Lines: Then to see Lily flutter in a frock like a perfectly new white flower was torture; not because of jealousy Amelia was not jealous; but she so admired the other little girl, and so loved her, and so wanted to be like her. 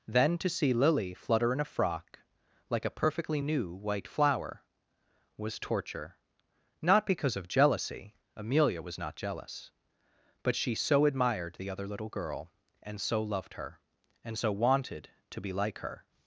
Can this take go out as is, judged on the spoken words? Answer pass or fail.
pass